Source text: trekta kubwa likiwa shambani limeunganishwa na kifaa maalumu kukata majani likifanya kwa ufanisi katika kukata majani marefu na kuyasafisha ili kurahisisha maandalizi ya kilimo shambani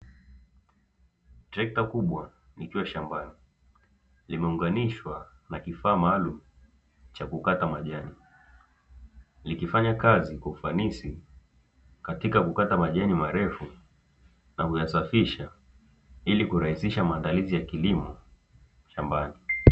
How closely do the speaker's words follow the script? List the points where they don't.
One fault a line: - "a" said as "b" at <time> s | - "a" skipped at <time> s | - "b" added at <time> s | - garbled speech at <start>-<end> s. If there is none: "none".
- "cha" added at 7.1 s
- "kazi" added at 9.9 s